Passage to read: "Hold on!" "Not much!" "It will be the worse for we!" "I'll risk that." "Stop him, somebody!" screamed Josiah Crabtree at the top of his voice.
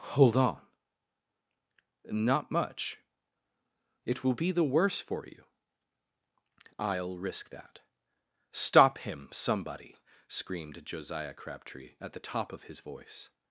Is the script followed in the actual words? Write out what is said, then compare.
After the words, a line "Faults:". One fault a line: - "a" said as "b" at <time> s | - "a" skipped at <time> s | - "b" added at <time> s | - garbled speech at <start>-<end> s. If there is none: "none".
"Hold on!" "Not much!" "It will be the worse for you!" "I'll risk that." "Stop him, somebody!" screamed Josiah Crabtree at the top of his voice.
Faults:
- "we" said as "you" at 5.3 s